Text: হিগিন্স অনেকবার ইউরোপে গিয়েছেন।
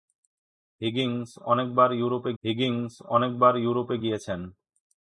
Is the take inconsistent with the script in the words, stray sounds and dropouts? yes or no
yes